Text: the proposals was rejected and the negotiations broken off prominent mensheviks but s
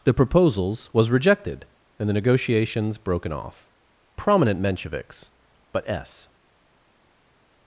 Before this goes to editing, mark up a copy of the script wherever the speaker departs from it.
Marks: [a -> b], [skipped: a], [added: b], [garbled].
the proposals was rejected and the negotiations broken off prominent mensheviks but s